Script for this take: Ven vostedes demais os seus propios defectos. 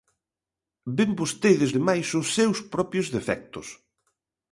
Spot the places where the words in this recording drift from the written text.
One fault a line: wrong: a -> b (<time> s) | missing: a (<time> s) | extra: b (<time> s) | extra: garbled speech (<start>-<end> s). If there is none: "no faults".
no faults